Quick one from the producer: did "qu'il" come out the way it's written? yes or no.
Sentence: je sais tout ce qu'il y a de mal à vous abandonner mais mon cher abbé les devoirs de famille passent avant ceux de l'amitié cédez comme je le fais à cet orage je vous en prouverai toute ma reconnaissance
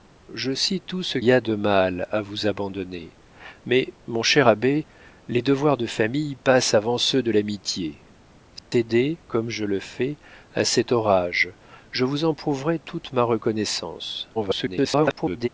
no